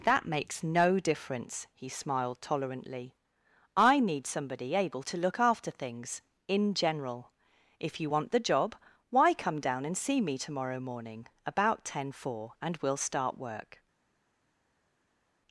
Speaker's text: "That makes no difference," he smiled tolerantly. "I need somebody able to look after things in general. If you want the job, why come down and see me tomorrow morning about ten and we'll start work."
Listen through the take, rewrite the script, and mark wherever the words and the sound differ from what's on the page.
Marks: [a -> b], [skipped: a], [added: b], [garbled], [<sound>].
"That makes no difference," he smiled tolerantly. "I need somebody able to look after things in general. If you want the job, why come down and see me tomorrow morning about ten [added: four] and we'll start work."